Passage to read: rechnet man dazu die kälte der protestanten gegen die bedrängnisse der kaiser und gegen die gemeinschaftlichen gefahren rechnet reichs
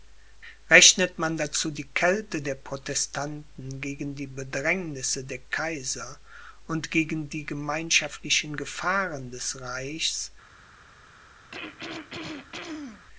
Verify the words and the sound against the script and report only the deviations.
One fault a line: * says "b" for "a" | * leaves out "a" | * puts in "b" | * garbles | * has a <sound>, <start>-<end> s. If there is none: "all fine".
* says "des" for "rechnet"
* has a throat clearing, 11.5-13.1 s